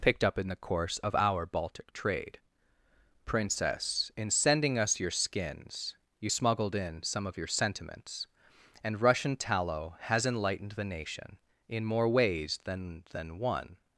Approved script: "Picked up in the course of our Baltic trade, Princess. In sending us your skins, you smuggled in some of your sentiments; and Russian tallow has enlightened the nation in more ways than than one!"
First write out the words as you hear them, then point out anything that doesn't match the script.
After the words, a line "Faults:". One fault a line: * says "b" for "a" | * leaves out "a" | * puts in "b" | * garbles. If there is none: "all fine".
"Picked up in the course of our Baltic trade, Princess. In sending us your skins, you smuggled in some of your sentiments; and Russian tallow has enlightened the nation in more ways than than one!"
Faults:
all fine